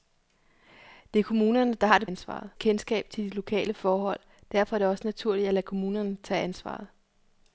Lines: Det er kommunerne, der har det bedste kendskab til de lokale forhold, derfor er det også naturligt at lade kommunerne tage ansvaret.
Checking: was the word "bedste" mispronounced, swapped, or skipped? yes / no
yes